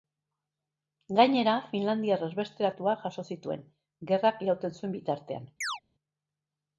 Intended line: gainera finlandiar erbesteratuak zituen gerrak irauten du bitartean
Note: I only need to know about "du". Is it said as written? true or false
false